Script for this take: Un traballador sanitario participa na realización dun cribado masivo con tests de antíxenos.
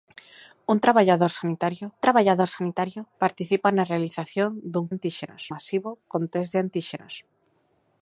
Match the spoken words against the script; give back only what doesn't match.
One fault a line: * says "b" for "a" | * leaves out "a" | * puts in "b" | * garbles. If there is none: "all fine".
* puts in "traballador sanitario"
* says "antíxenos" for "cribado"